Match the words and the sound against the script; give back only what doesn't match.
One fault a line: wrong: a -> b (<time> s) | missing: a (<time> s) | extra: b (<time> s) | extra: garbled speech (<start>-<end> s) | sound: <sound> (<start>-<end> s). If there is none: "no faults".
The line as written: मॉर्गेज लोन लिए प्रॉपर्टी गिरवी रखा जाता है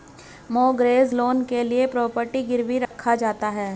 extra: के (1.4 s)
sound: dropout (2.9-2.9 s)